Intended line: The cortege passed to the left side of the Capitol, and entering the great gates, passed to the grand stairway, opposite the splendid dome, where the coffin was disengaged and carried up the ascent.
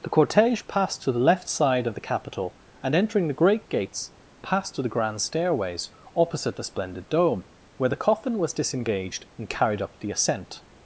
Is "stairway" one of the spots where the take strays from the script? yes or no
yes